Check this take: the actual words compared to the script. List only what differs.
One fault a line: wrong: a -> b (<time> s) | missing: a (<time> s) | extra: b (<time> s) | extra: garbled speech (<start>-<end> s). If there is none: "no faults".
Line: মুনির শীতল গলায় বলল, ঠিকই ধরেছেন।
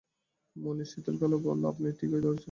extra: আপনি (1.6 s)